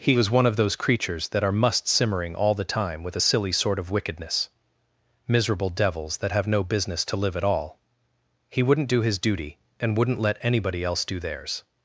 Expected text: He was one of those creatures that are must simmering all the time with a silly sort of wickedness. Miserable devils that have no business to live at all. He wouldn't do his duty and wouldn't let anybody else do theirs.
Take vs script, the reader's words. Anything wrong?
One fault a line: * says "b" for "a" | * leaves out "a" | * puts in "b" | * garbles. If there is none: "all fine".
all fine